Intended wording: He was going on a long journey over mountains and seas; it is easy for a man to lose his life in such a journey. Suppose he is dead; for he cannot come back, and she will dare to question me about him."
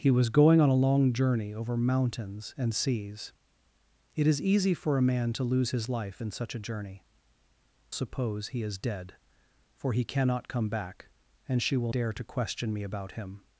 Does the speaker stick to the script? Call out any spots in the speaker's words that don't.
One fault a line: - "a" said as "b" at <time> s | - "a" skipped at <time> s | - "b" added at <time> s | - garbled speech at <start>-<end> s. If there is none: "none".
none